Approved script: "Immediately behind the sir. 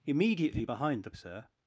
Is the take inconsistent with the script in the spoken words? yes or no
no